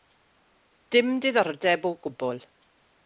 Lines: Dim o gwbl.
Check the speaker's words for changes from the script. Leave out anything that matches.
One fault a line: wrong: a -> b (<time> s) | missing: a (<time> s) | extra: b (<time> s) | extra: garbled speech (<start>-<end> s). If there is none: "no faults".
extra: diddordeb (1.2 s)